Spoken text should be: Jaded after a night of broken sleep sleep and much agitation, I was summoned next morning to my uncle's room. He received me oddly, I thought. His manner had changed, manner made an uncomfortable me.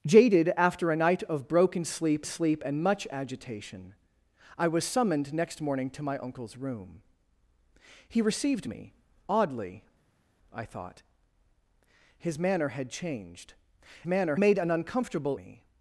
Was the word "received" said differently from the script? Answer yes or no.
no